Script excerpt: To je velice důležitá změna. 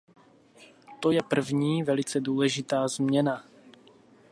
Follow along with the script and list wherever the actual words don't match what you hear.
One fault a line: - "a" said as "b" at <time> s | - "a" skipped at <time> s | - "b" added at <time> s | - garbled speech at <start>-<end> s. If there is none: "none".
- "první" added at 1.2 s